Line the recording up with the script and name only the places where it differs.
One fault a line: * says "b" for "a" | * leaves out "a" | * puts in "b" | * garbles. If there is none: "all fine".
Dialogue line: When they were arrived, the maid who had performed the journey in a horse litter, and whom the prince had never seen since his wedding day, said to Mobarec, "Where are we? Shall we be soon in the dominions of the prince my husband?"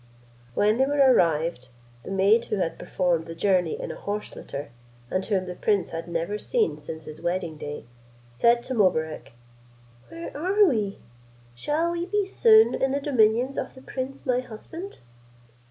all fine